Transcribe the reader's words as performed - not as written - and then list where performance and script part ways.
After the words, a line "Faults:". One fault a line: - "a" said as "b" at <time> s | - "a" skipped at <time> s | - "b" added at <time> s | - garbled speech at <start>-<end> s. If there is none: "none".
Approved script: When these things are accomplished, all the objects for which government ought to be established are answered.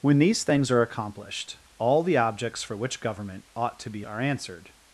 When these things are accomplished, all the objects for which government ought to be are answered.
Faults:
- "established" skipped at 4.0 s